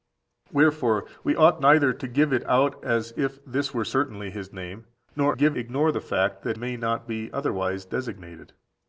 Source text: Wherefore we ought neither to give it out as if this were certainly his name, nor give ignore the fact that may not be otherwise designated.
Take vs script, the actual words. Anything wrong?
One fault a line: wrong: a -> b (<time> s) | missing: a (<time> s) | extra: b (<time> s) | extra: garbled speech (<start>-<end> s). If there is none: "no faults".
no faults